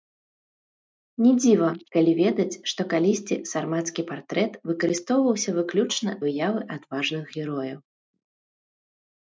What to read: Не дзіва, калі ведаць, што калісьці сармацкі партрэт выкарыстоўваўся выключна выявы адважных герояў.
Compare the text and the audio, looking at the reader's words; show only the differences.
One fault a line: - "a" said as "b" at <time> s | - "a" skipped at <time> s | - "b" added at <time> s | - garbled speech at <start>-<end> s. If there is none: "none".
none